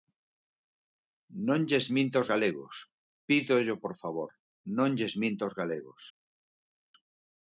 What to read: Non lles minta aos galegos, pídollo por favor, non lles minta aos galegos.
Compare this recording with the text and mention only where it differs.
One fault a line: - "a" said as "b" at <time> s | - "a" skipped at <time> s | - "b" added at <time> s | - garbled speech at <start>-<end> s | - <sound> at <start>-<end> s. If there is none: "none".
none